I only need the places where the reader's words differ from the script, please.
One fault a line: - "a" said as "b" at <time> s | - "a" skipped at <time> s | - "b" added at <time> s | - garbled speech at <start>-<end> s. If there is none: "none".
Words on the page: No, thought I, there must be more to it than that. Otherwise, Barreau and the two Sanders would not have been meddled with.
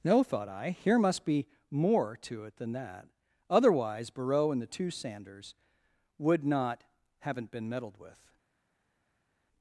- "there" said as "here" at 0.7 s
- "have" said as "haven't" at 7.2 s